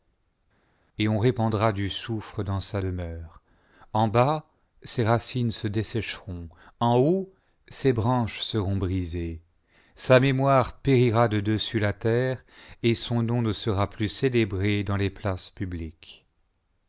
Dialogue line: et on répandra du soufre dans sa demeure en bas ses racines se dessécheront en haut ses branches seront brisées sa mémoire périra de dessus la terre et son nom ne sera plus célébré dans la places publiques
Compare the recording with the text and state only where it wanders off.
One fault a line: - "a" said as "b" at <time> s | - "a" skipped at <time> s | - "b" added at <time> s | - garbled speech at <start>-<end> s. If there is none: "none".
- "la" said as "les" at 15.0 s